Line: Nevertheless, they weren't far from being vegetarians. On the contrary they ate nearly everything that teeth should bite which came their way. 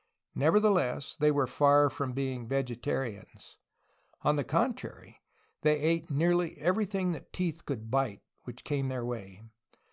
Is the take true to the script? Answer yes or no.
no